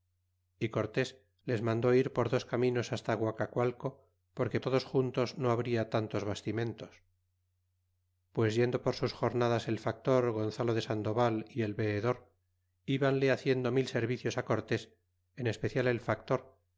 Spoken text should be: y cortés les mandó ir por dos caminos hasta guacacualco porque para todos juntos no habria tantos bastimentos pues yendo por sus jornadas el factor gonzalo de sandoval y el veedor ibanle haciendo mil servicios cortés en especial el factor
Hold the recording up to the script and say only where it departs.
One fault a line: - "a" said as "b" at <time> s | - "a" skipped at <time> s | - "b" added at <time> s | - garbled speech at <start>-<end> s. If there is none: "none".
- "para" skipped at 4.6 s